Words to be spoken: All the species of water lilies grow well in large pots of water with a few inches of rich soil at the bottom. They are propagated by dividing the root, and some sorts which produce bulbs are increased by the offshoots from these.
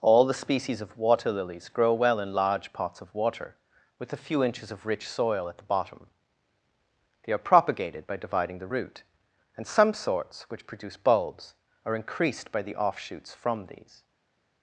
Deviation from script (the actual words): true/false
false